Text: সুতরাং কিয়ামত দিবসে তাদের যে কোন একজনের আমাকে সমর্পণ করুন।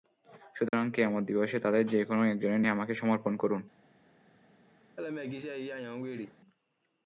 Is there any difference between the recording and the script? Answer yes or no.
no